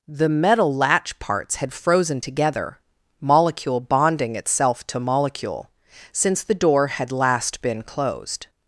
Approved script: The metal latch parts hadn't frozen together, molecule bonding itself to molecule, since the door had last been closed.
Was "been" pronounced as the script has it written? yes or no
yes